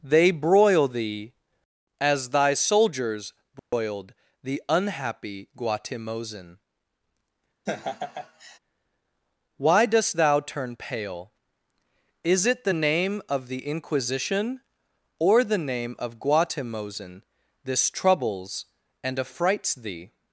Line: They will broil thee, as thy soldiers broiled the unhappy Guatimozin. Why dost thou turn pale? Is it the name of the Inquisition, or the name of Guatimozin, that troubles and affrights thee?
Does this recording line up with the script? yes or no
no